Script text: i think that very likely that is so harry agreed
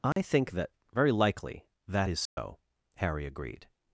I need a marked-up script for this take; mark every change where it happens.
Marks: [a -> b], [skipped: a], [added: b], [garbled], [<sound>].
i [dropout] think that very likely that is so [dropout] harry agreed